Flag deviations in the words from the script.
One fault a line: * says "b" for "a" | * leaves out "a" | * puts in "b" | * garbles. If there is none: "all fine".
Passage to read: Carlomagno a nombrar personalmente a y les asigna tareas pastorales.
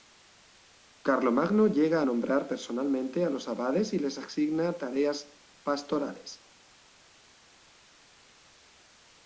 * puts in "llega"
* puts in "los abades"